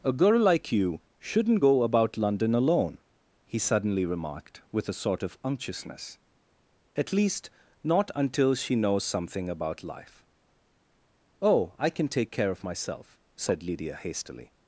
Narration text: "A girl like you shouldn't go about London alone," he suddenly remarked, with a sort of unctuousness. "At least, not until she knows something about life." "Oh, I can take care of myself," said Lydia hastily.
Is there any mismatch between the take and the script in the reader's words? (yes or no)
no